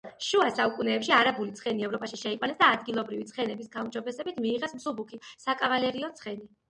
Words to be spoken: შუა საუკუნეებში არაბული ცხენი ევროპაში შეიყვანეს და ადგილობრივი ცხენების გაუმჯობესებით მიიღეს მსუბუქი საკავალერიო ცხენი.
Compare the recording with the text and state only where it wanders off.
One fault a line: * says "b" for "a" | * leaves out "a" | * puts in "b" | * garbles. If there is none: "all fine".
all fine